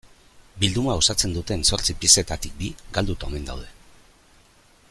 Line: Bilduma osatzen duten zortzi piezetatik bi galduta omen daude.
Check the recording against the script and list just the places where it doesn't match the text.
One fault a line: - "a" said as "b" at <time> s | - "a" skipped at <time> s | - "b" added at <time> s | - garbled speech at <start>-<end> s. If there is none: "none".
none